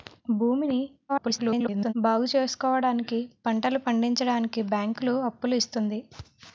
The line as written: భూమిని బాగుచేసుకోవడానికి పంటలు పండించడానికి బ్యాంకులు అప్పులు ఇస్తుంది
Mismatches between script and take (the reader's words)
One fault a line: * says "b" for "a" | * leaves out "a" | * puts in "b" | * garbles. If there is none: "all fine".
* garbles